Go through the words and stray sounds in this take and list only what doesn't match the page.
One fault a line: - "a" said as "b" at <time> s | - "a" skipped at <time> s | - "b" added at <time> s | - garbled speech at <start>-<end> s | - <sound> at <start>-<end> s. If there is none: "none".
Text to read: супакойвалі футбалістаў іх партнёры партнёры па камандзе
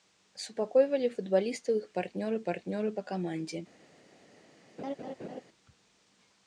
- laugh at 4.8-5.4 s